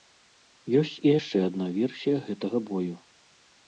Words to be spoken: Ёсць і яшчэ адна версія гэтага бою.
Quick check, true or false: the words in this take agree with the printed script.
true